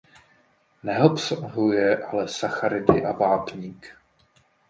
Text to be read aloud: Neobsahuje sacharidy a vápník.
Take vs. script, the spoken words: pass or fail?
fail